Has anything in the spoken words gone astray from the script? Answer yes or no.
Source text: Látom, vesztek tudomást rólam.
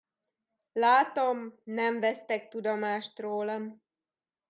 yes